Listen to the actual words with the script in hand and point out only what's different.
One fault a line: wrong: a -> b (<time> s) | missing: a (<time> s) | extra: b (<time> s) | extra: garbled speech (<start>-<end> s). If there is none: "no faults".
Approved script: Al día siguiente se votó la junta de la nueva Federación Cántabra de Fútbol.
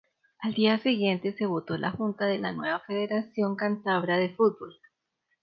no faults